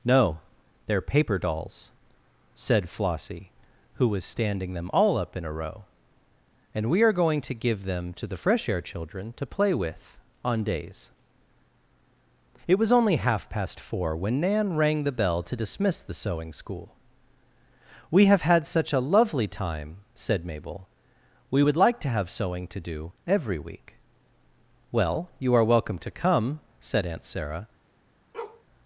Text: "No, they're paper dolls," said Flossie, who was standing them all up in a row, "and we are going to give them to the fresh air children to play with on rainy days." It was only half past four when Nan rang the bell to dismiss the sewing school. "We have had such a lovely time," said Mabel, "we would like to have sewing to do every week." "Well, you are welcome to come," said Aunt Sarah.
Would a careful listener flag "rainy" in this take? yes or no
yes